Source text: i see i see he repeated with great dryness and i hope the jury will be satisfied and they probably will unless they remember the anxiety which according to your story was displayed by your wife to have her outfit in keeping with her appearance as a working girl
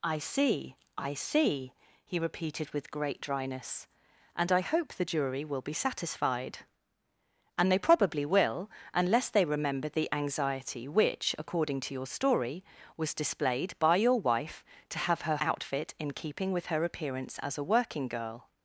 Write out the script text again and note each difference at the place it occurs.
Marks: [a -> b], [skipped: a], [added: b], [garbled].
i see i see he repeated with great dryness and i hope the jury will be satisfied and they probably will unless they remember the anxiety which according to your story was displayed by your wife to have her outfit in keeping with her appearance as a working girl